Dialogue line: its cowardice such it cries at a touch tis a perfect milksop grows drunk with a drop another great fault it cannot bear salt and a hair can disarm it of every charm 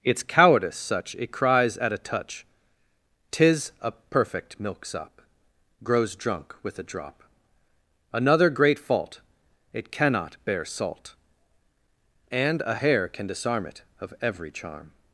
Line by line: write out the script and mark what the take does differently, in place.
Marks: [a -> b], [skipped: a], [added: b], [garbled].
its cowardice such it cries at a touch tis a perfect milksop grows drunk with a drop another great fault it cannot bear salt and a hair can disarm it of every charm